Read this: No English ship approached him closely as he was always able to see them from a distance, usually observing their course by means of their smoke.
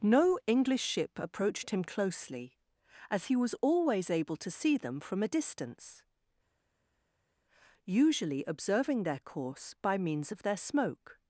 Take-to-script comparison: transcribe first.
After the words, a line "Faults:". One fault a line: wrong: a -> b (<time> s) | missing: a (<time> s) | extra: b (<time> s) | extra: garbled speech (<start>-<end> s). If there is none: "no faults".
No English ship approached him closely as he was always able to see them from a distance, usually observing their course by means of their smoke.
Faults:
no faults